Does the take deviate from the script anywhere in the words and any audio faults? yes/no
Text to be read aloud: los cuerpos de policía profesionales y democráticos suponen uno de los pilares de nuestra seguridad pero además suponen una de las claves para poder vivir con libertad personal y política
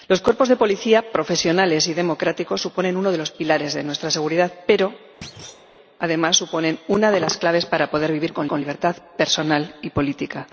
yes